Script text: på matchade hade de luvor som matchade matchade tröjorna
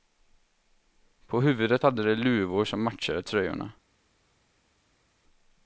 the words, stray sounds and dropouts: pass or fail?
fail